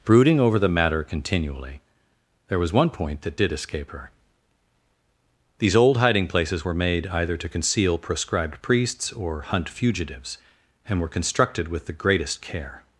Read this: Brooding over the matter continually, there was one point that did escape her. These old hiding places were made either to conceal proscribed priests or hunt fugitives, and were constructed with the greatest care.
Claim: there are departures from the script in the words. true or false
false